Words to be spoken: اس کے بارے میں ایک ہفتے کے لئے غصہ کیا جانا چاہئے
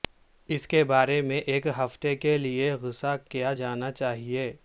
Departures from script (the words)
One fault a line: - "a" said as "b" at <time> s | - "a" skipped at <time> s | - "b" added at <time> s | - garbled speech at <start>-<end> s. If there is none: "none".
none